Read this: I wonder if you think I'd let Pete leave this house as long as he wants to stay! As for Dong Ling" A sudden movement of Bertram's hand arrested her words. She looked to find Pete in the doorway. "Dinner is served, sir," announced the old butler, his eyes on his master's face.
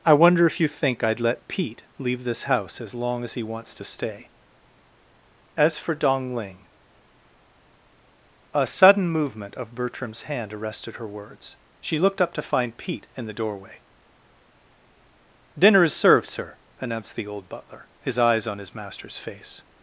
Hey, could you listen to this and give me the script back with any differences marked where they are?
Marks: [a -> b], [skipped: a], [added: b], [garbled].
I wonder if you think I'd let Pete leave this house as long as he wants to stay! As for Dong Ling" A sudden movement of Bertram's hand arrested her words. She looked [added: up] to find Pete in the doorway. "Dinner is served, sir," announced the old butler, his eyes on his master's face.